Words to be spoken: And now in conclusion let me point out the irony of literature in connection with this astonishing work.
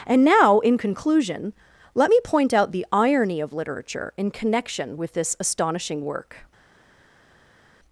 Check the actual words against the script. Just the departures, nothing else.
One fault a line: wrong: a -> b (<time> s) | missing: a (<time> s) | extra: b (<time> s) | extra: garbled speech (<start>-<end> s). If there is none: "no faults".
no faults